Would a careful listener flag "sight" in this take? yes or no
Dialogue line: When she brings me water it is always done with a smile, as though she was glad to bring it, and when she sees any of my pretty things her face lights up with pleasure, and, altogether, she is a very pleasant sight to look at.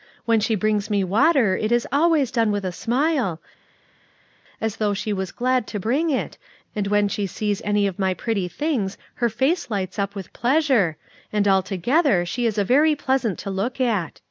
yes